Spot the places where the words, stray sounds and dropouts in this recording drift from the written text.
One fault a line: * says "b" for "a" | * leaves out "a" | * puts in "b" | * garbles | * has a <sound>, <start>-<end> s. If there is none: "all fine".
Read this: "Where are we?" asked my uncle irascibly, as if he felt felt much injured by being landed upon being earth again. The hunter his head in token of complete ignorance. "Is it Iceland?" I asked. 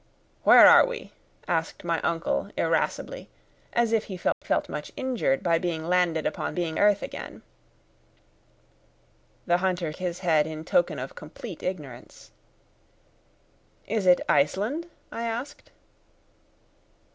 * has a dropout, 4.3-4.4 s